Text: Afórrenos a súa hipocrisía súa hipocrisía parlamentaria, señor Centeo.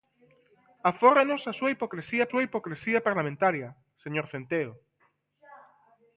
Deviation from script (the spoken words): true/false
false